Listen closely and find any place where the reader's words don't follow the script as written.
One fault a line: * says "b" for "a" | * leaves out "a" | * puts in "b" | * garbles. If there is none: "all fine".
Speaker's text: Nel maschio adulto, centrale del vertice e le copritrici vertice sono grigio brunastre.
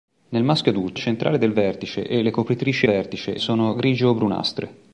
all fine